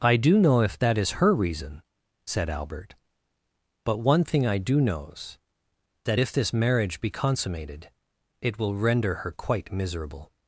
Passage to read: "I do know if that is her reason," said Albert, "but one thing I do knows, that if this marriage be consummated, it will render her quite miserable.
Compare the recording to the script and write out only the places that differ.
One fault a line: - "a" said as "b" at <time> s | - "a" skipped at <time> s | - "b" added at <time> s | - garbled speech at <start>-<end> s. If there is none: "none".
none